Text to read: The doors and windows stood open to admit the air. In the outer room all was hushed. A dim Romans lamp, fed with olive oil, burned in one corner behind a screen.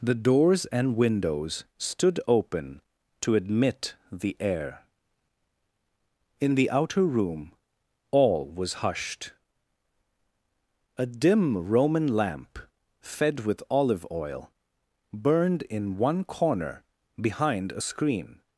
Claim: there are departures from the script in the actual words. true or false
true